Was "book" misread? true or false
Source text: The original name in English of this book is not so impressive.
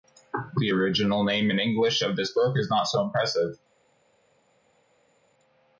false